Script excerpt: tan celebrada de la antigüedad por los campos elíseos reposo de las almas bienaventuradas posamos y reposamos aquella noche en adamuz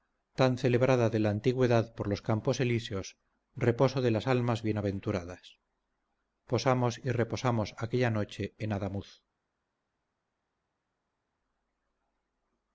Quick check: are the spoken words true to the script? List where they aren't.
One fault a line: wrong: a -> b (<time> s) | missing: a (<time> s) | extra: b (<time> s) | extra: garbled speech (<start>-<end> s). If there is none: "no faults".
no faults